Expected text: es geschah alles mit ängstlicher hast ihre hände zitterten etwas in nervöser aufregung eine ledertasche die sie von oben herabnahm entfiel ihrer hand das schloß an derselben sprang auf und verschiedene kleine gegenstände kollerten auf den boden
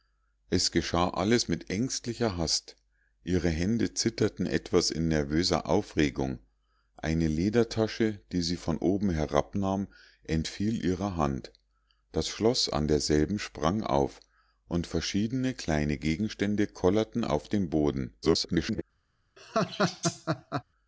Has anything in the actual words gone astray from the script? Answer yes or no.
yes